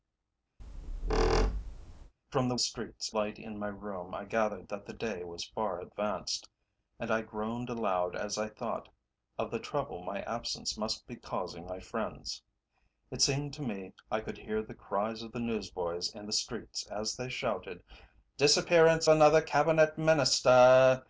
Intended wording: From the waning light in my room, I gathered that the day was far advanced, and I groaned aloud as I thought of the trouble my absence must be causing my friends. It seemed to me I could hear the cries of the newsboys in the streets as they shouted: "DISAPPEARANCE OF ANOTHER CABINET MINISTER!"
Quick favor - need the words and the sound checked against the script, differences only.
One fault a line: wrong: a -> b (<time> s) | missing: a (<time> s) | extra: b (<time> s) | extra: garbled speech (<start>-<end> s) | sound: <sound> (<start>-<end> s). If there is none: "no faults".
sound: squeak (0.6-2.1 s)
wrong: waning -> streets (2.6 s)
missing: OF (19.1 s)